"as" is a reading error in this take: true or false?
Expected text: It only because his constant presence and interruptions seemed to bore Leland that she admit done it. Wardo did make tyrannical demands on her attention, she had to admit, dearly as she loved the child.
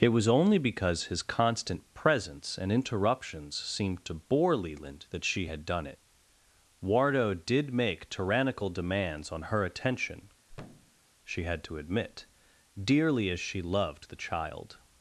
false